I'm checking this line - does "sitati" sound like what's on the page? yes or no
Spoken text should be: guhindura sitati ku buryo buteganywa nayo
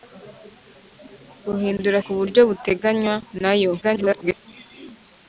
no